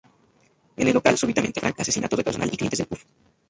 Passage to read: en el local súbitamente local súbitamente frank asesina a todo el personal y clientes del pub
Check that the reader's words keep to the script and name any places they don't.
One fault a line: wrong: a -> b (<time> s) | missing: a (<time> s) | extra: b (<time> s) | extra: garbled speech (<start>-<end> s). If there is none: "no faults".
missing: local súbitamente (1.6 s)